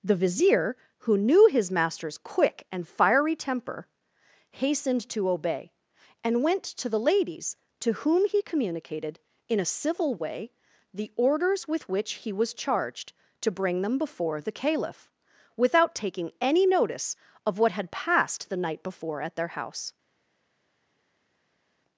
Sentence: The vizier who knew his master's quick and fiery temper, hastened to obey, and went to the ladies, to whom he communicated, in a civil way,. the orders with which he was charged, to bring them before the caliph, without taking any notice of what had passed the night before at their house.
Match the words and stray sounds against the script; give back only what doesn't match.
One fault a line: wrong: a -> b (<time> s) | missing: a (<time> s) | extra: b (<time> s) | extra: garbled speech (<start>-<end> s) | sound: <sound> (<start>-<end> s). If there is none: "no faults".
no faults